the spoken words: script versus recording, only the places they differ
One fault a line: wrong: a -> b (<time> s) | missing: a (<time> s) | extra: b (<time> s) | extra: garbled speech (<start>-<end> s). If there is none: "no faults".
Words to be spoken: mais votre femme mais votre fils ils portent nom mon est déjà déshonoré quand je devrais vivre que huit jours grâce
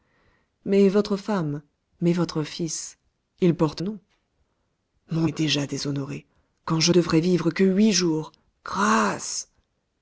no faults